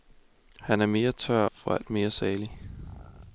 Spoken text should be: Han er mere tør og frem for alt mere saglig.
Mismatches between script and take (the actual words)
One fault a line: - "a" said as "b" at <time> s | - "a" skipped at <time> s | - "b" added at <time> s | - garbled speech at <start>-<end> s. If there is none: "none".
- "og frem" skipped at 1.4 s